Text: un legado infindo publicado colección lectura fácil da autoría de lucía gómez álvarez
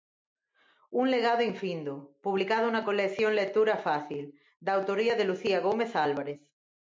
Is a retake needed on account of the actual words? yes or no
yes